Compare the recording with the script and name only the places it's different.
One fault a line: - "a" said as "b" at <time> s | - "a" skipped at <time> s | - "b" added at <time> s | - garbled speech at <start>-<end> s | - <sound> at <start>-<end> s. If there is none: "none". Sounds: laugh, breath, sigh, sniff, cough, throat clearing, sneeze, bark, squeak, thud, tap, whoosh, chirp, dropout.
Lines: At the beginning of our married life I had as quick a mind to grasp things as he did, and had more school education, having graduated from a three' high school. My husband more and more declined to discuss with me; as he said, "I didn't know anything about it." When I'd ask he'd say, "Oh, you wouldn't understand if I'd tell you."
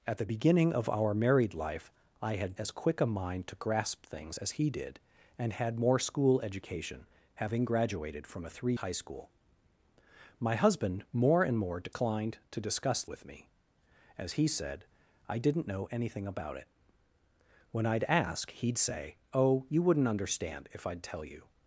none